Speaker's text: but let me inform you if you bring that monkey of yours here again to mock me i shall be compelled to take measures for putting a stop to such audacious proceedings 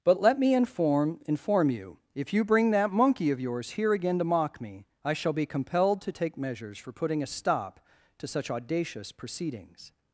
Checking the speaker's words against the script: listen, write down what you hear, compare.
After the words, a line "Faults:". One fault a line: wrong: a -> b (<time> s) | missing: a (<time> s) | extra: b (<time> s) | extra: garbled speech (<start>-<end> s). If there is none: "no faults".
but let me inform inform you if you bring that monkey of yours here again to mock me i shall be compelled to take measures for putting a stop to such audacious proceedings
Faults:
extra: inform (1.3 s)